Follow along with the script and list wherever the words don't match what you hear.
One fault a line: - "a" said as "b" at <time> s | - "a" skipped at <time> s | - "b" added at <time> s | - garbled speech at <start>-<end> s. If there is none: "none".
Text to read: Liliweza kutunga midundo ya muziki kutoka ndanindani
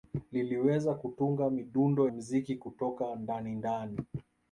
- "ya" skipped at 2.1 s